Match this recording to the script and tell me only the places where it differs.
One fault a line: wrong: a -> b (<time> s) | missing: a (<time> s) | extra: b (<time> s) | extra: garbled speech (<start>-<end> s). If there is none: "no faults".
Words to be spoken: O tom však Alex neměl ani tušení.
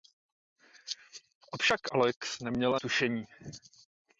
missing: tom (1.6 s)
missing: ani (2.8 s)